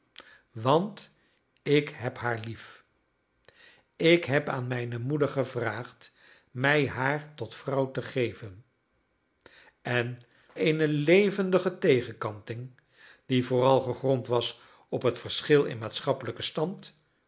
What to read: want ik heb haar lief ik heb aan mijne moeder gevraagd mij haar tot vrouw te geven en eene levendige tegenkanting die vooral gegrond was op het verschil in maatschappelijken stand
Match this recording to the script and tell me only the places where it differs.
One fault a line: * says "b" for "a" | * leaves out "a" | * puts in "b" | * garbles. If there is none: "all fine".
all fine